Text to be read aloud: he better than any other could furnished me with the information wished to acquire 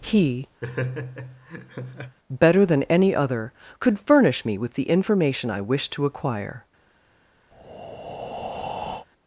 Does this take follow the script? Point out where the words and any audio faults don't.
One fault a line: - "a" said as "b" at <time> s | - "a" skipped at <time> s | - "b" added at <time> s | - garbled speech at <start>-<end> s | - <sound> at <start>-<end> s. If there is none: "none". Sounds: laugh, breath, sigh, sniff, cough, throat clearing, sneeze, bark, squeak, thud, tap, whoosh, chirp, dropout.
- laugh at 0.6-2.2 s
- "furnished" said as "furnish" at 4.0 s
- "i" added at 5.5 s
- breath at 7.5-9.1 s